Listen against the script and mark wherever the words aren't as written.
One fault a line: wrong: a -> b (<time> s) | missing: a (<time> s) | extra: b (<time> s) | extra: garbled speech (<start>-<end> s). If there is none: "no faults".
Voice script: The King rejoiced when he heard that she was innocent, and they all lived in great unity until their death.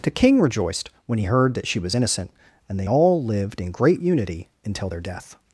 no faults